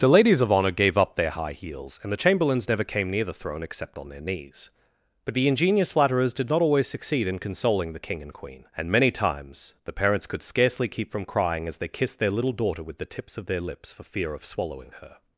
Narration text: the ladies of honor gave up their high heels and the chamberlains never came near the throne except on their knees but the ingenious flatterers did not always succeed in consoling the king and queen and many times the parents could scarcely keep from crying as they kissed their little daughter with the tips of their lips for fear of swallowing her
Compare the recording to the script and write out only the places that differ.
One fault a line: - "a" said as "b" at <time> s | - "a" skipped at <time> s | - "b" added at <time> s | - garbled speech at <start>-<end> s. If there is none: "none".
none